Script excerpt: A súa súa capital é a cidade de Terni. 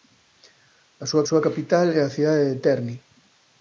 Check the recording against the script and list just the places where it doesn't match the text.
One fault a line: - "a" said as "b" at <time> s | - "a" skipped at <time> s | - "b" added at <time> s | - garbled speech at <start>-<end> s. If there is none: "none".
none